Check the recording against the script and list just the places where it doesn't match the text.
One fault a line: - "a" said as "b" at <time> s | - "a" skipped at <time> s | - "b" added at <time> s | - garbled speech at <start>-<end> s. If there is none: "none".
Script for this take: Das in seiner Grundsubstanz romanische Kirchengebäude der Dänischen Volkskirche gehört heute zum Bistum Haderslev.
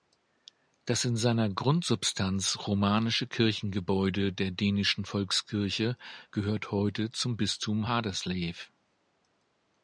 none